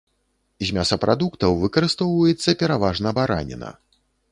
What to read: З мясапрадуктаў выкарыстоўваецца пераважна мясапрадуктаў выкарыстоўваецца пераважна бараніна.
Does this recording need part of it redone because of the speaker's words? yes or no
yes